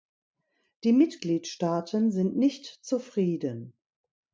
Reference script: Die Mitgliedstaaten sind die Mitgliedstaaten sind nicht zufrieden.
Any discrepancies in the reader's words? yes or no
yes